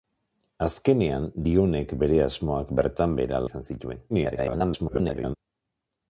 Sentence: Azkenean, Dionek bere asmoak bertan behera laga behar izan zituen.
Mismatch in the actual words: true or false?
true